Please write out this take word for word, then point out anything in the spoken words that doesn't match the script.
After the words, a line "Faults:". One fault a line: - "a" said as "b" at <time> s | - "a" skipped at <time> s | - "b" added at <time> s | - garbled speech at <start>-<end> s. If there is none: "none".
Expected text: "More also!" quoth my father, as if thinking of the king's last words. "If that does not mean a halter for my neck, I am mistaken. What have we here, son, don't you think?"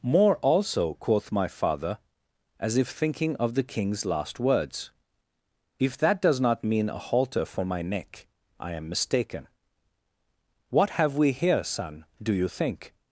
"More also!" quoth my father, as if thinking of the king's last words. "If that does not mean a halter for my neck, I am mistaken. What have we here, son, do you think?"
Faults:
- "don't" said as "do" at 12.2 s